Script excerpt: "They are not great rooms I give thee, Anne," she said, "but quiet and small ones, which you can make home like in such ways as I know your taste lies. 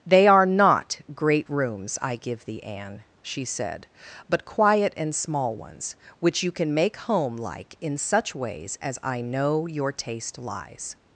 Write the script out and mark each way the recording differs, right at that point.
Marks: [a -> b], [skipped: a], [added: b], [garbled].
"They are not great rooms I give thee, Anne," she said, "but quiet and small ones, which you can make home like in such ways as I know your taste lies.